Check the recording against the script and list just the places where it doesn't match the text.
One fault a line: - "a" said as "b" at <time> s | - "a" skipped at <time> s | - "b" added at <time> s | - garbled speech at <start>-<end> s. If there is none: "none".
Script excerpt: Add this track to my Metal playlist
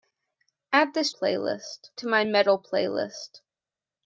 - "track" said as "playlist" at 1.1 s